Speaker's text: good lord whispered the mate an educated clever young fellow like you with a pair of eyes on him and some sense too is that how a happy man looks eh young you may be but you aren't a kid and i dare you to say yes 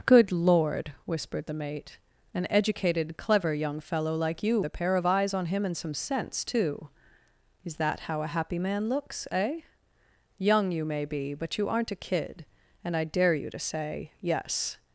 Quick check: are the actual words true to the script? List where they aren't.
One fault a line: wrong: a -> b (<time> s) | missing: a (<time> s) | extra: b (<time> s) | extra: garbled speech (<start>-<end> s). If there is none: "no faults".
missing: with (4.6 s)